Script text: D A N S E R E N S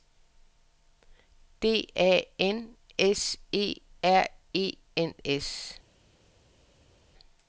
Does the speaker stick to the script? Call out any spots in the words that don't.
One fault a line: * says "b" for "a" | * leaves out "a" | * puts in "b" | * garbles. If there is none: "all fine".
all fine